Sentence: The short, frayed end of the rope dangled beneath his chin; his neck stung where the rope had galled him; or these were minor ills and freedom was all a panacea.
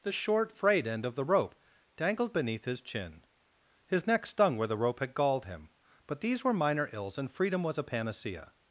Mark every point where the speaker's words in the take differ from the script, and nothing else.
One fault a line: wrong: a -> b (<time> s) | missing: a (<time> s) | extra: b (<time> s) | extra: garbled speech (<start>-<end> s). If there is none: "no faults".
wrong: or -> but (6.1 s)
missing: all (7.8 s)